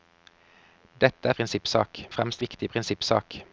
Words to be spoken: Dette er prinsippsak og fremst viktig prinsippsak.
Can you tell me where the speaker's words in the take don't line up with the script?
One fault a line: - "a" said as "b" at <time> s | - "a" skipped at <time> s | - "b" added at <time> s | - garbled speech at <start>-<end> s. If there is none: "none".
none